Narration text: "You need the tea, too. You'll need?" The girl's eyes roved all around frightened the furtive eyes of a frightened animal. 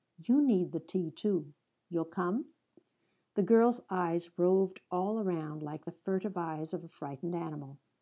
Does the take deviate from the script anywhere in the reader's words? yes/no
yes